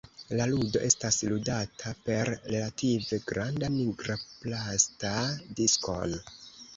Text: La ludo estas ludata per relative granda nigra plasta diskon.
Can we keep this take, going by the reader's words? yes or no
yes